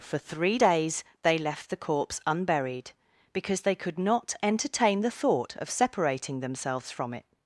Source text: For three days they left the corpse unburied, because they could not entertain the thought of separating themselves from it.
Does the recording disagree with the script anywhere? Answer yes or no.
no